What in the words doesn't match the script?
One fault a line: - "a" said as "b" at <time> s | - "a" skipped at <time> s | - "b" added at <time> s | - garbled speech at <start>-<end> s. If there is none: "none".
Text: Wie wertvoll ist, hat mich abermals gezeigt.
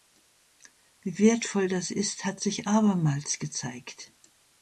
- "das" added at 1.7 s
- "mich" said as "sich" at 2.4 s